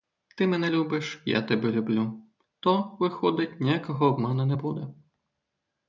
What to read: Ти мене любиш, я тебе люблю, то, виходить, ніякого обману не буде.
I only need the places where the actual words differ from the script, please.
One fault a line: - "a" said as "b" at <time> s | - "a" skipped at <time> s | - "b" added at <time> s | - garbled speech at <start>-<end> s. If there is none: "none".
none